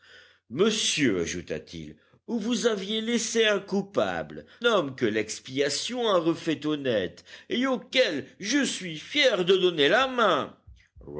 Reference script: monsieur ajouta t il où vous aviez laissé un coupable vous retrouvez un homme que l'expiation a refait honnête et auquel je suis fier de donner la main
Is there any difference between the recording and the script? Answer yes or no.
yes